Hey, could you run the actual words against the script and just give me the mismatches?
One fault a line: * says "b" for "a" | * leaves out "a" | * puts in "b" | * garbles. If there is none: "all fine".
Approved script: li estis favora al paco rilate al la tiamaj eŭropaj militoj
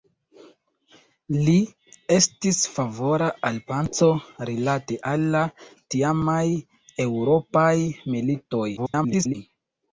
* garbles